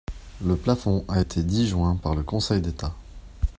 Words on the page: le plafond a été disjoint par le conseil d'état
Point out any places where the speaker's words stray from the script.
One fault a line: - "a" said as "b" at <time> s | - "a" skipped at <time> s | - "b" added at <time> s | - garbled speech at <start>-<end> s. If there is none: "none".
none